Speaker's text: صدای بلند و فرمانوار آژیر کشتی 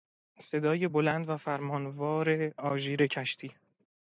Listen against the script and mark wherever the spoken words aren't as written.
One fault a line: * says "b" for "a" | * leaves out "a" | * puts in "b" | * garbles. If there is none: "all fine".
all fine